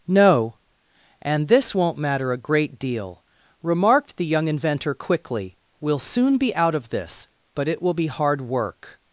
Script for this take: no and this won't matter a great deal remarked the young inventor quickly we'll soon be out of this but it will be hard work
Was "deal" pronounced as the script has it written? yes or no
yes